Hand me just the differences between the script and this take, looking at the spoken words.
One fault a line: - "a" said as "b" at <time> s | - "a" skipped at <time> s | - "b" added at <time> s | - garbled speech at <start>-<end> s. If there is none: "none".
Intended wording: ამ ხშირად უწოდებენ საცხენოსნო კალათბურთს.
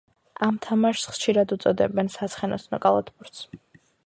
- "თამაშს" added at 0.7 s